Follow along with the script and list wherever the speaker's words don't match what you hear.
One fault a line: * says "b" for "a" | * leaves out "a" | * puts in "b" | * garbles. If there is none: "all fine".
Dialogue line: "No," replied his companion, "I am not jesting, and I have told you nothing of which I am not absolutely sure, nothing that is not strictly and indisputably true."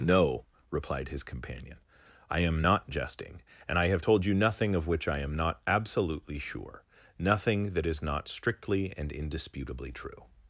all fine